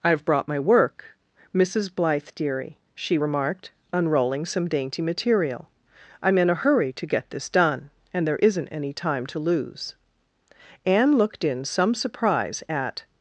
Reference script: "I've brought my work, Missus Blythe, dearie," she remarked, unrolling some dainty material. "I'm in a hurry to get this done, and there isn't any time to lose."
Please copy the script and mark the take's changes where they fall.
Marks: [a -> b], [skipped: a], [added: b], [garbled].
"I've brought my work, Missus Blythe, dearie," she remarked, unrolling some dainty material. "I'm in a hurry to get this done, and there isn't any time to lose." [added: Anne looked in some surprise at]